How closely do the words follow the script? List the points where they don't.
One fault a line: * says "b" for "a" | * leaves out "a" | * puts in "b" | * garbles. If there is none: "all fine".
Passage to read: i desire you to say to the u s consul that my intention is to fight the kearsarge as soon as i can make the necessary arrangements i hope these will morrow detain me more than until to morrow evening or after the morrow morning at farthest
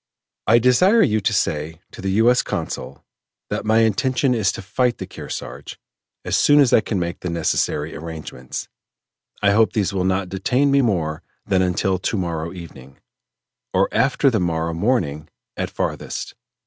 * says "not" for "morrow"